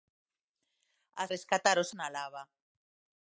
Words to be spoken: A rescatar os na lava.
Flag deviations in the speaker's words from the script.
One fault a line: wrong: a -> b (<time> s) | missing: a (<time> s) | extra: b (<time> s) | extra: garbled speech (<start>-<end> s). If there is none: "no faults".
no faults